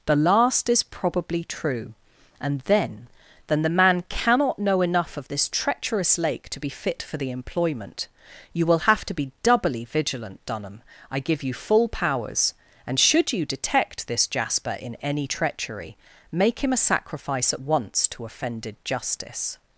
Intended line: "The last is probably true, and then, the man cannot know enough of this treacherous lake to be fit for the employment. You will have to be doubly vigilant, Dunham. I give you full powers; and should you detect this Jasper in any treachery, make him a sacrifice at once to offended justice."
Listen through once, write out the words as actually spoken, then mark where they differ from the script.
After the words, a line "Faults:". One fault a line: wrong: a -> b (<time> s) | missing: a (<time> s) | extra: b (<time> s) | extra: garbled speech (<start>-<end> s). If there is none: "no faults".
"The last is probably true, and then then, the man cannot know enough of this treacherous lake to be fit for the employment. You will have to be doubly vigilant, Dunham. I give you full powers; and should you detect this Jasper in any treachery, make him a sacrifice at once to offended justice."
Faults:
extra: then (3.5 s)